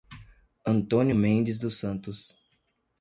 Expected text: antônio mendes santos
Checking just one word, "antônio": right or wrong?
right